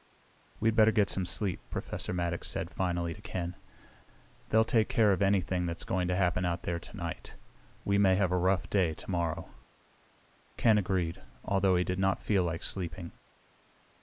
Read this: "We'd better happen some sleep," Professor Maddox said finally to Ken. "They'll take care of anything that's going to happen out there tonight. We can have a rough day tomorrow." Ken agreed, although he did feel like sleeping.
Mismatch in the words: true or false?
true